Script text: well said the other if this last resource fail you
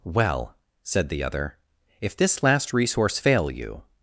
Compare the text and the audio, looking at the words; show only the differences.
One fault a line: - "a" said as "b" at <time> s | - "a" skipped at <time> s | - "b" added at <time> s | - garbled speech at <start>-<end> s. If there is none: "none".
none